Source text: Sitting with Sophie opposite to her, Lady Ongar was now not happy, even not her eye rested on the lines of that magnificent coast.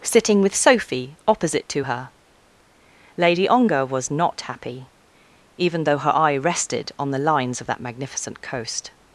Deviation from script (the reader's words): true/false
true